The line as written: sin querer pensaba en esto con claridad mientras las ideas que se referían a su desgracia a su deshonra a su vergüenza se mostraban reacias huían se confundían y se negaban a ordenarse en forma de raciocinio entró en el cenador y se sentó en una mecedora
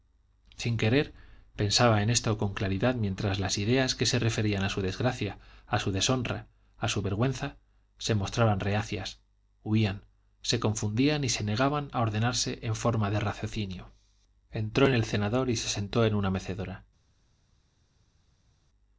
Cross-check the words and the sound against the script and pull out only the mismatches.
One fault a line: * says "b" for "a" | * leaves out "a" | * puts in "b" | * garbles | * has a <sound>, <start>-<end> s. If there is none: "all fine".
all fine